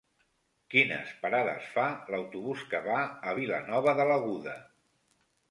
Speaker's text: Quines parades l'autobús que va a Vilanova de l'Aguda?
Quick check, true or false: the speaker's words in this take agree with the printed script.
false